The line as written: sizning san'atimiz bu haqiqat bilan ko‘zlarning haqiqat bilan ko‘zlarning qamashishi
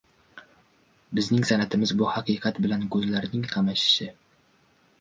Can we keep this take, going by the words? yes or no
no